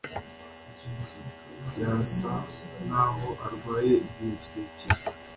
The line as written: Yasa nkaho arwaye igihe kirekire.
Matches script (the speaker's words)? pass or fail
pass